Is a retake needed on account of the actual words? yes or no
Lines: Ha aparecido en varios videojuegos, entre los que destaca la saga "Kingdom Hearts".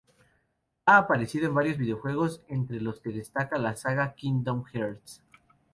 no